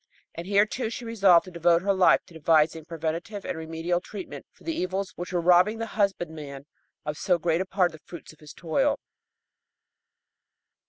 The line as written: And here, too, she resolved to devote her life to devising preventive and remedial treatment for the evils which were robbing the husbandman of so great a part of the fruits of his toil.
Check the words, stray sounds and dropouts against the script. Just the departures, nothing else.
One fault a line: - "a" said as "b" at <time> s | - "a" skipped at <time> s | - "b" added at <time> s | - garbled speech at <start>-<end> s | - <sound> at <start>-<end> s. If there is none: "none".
none